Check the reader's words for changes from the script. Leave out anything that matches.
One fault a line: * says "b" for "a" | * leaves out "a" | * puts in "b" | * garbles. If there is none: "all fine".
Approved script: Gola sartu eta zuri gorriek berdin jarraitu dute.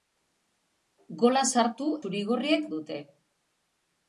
* leaves out "eta"
* leaves out "berdin jarraitu"